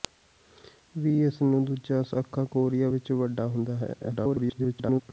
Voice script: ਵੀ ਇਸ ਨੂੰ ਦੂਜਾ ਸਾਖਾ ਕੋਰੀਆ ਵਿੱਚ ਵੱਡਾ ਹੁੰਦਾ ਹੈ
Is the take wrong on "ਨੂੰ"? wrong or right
right